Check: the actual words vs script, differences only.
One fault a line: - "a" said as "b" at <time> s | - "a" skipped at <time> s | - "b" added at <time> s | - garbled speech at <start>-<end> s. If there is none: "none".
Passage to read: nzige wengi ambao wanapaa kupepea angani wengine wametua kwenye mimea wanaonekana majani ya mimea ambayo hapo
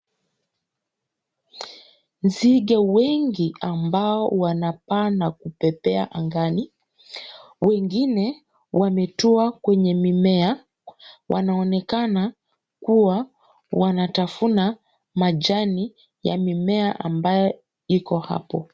- "na" added at 5.1 s
- "kuwa wanatafuna" added at 12.8 s
- "iko" added at 17.9 s